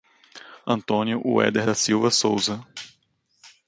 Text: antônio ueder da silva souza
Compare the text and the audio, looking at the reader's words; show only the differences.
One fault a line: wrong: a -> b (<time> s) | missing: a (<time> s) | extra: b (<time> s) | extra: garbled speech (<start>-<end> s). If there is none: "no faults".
no faults